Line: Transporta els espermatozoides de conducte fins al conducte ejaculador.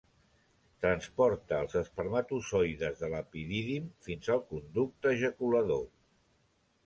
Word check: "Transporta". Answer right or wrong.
right